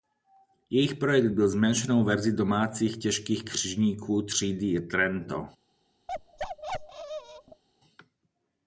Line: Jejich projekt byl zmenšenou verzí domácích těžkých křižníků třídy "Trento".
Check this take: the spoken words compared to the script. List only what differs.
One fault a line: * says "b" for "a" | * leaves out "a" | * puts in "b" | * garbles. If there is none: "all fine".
all fine